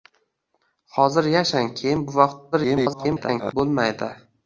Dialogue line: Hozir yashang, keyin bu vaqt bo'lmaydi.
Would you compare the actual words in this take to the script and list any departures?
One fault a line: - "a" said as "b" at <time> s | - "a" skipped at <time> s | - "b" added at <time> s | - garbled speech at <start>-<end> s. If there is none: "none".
- garbled speech at 2.5-3.5 s